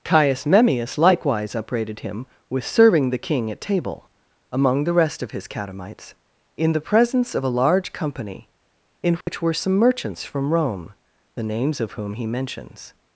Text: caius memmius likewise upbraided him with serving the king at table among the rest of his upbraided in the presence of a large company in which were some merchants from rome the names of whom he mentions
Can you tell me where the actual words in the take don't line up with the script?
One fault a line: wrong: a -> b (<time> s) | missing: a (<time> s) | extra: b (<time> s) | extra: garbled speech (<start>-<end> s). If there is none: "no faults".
wrong: upbraided -> catamites (5.5 s)